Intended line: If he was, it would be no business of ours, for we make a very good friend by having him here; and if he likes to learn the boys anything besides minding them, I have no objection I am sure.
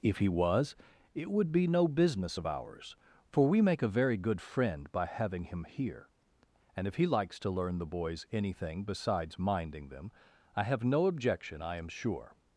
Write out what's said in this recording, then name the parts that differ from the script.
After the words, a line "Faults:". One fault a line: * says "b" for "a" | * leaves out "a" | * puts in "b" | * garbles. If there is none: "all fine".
If he was, it would be no business of ours, for we make a very good friend by having him here; and if he likes to learn the boys anything besides minding them, I have no objection I am sure.
Faults:
all fine